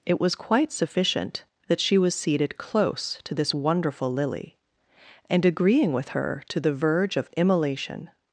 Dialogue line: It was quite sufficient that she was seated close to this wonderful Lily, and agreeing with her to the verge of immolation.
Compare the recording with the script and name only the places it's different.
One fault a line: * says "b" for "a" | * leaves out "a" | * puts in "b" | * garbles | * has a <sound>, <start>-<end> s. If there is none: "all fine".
all fine